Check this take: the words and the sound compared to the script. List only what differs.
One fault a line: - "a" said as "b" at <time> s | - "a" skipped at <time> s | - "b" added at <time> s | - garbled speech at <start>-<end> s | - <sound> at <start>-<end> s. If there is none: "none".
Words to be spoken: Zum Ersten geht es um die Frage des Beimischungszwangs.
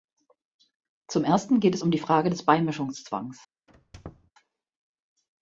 - squeak at 3.7-4.3 s